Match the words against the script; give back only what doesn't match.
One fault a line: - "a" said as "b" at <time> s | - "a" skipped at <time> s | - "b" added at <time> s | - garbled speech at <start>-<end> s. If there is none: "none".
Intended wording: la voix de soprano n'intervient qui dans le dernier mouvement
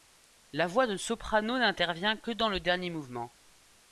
- "qui" said as "que" at 2.2 s